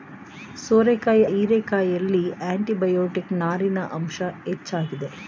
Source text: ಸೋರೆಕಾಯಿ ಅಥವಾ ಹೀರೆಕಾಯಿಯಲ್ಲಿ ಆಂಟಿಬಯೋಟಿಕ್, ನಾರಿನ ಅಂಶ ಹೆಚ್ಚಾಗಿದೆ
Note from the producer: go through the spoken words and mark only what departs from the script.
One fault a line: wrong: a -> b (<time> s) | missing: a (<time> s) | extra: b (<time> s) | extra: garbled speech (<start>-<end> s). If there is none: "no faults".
missing: ಅಥವಾ (1.2 s)